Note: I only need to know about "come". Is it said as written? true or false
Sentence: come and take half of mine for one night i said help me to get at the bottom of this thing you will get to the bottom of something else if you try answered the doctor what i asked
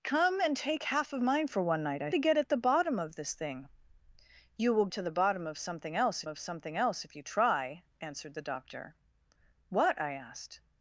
true